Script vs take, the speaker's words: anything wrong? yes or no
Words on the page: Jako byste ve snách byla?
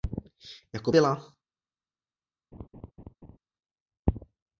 yes